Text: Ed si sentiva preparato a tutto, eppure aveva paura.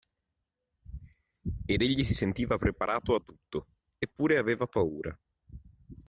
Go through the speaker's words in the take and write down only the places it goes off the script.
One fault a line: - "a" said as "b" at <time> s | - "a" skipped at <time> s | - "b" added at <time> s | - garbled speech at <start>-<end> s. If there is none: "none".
- "egli" added at 1.8 s